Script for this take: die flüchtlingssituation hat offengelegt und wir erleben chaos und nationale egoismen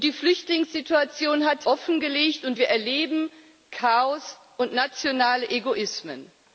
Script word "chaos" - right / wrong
right